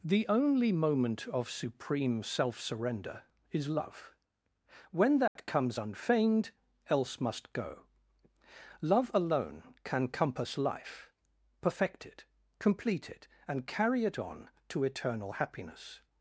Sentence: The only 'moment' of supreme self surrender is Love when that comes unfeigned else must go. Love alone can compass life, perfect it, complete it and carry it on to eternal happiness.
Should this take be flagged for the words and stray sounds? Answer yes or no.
yes